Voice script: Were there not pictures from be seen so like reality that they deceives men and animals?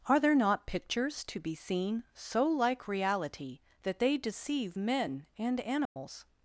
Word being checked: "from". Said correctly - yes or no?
no